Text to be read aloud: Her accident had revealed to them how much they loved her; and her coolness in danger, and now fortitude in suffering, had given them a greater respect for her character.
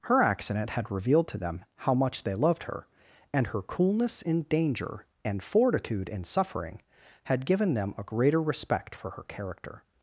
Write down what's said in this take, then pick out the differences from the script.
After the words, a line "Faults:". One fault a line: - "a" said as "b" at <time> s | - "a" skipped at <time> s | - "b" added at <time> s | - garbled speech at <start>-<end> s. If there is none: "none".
Her accident had revealed to them how much they loved her; and her coolness in danger, and fortitude in suffering, had given them a greater respect for her character.
Faults:
- "now" skipped at 5.4 s